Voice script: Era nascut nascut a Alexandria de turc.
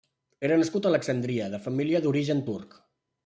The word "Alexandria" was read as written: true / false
true